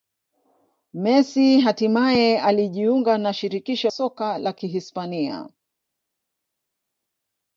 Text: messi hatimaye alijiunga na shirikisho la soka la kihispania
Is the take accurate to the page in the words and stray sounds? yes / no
no